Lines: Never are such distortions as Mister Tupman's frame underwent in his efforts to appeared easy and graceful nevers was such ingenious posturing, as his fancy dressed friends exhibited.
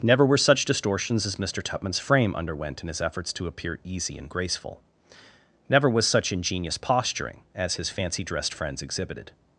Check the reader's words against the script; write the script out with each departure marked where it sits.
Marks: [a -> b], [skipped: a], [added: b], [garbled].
Never [are -> were] such distortions as Mister Tupman's frame underwent in his efforts to [appeared -> appear] easy and graceful [nevers -> never] was such ingenious posturing, as his fancy dressed friends exhibited.